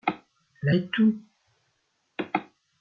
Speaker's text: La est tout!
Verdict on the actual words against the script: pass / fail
pass